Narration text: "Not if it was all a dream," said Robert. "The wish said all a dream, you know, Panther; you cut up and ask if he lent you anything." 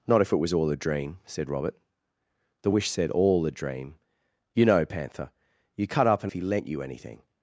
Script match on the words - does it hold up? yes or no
no